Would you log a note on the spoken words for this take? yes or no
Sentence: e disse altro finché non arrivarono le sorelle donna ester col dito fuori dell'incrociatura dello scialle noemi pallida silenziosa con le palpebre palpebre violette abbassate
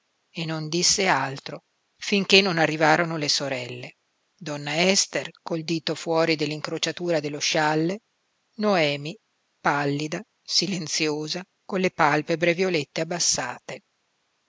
yes